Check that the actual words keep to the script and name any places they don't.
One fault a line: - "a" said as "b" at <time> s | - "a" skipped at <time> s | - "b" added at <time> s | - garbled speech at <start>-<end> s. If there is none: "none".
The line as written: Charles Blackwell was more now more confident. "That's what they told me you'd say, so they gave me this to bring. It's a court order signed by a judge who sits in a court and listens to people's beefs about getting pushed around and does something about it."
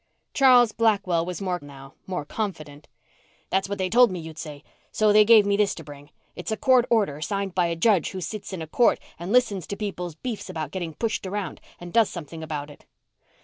none